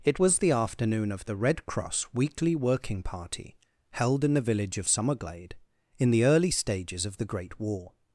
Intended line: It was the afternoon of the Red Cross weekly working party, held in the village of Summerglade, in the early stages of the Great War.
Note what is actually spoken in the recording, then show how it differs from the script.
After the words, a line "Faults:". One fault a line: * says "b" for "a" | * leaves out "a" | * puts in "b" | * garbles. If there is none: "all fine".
It was the afternoon of the Red Cross weekly working party, held in the village of Summerglade, in the early stages of the Great War.
Faults:
all fine